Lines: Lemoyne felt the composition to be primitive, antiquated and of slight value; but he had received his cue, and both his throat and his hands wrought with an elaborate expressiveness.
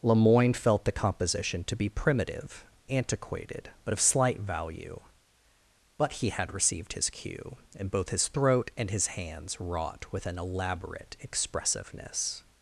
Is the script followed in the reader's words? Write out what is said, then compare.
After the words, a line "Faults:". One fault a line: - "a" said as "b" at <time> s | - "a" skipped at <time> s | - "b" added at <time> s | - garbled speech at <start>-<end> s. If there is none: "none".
Lemoyne felt the composition to be primitive, antiquated but of slight value; but he had received his cue, and both his throat and his hands wrought with an elaborate expressiveness.
Faults:
- "and" said as "but" at 3.9 s